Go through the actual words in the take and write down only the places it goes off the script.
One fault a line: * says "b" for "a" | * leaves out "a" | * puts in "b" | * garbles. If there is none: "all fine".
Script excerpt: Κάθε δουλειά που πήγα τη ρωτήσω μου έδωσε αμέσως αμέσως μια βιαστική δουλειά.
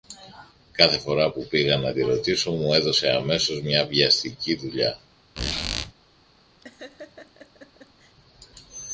* says "φορά" for "δουλειά"
* puts in "να"
* leaves out "αμέσως"